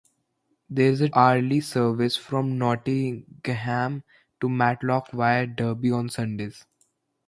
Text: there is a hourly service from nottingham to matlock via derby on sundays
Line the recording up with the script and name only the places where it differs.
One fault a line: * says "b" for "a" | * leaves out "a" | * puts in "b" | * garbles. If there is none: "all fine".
all fine